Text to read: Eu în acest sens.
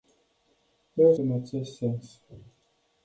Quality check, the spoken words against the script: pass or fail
pass